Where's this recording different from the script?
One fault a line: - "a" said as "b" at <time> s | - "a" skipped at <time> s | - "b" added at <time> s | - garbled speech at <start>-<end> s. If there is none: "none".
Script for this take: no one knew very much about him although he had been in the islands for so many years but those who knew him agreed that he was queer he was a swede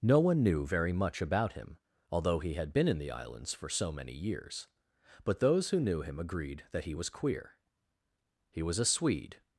none